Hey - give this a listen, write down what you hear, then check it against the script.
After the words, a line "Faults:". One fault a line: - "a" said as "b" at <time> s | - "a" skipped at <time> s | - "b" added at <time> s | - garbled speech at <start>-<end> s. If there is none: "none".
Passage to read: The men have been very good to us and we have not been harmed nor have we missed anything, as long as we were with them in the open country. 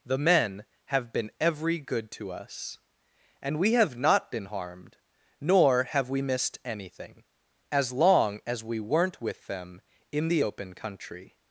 The men have been every good to us and we have not been harmed nor have we missed anything, as long as we weren't with them in the open country.
Faults:
- "very" said as "every" at 1.4 s
- "were" said as "weren't" at 8.8 s